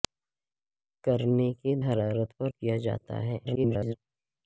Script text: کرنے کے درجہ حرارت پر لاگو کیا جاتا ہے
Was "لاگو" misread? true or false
true